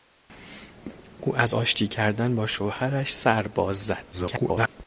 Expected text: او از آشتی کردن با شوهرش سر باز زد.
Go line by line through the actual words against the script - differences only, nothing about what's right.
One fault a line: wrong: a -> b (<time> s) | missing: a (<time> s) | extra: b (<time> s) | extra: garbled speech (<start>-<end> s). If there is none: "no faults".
extra: garbled speech (4.1-4.7 s)